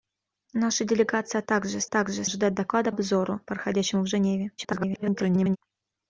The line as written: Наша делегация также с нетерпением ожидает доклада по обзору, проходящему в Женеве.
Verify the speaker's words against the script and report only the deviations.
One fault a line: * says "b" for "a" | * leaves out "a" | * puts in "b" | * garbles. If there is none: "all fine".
* says "также" for "нетерпением"
* leaves out "по"
* garbles